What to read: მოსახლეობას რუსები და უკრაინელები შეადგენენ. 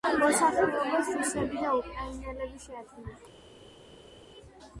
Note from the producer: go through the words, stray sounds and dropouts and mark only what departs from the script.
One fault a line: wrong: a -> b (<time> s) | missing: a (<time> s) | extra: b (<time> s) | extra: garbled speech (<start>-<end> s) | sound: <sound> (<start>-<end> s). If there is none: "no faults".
no faults